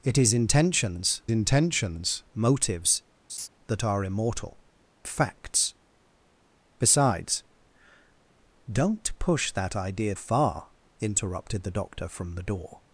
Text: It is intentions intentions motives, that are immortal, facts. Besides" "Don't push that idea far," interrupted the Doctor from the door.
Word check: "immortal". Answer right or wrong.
right